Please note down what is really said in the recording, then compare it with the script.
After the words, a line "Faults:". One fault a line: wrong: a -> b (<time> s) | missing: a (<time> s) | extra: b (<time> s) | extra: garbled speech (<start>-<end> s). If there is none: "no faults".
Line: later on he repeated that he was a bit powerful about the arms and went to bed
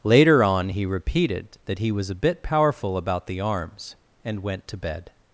later on he repeated that he was a bit powerful about the arms and went to bed
Faults:
no faults